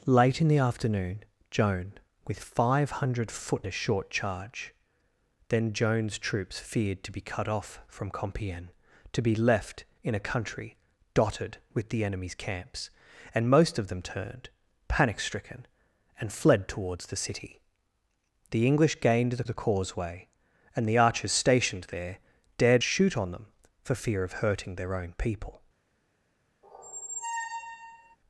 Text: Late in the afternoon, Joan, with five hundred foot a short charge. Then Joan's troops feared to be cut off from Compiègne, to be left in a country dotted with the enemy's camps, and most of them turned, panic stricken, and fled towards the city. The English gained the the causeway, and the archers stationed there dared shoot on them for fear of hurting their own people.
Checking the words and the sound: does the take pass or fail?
fail